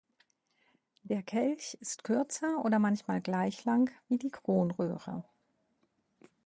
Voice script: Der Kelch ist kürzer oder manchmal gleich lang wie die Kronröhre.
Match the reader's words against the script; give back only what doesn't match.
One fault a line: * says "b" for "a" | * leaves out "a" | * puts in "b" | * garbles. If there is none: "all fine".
all fine